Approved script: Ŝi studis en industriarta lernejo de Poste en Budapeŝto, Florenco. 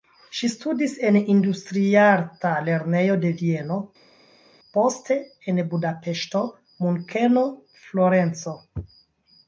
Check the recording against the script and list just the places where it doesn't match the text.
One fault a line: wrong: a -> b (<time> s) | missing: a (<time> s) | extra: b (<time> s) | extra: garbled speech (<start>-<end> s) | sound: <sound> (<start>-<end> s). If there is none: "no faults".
extra: Vieno (3.4 s)
extra: Munkeno (6.9 s)